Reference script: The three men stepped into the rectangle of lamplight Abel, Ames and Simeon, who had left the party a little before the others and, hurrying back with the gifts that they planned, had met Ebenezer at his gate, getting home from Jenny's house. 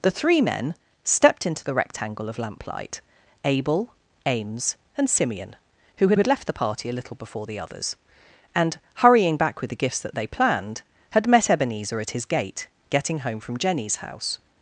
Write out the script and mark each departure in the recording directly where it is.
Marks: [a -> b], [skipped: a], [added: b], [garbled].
The three men stepped into the rectangle of lamplight Abel, Ames and Simeon, who had [added: had] left the party a little before the others and, hurrying back with the gifts that they planned, had met Ebenezer at his gate, getting home from Jenny's house.